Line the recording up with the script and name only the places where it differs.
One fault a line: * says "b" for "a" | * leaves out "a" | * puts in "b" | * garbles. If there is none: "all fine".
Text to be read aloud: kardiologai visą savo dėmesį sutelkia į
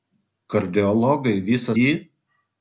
* leaves out "savo dėmesį sutelkia"